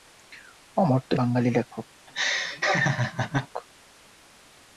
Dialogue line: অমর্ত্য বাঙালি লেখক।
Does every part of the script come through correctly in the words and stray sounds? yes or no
no